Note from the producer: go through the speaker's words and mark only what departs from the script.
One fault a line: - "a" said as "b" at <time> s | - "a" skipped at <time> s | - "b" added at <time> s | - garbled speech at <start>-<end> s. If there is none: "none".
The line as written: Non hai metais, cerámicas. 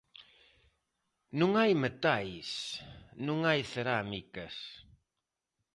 - "non hai" added at 3.3 s